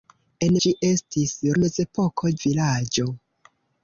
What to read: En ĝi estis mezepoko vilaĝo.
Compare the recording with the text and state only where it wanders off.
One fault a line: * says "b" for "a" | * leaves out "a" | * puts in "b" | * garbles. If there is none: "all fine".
all fine